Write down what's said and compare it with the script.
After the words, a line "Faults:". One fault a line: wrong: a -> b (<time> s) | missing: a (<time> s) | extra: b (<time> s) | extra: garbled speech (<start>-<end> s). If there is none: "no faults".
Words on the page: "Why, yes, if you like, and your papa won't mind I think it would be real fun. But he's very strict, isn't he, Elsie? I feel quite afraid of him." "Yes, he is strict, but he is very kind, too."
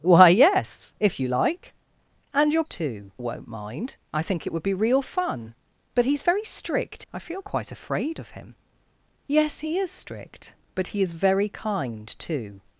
"Why, yes, if you like, and your too won't mind I think it would be real fun. But he's very strict? I feel quite afraid of him." "Yes, he is strict, but he is very kind, too."
Faults:
wrong: papa -> too (2.7 s)
missing: isn't he Elsie (7.1 s)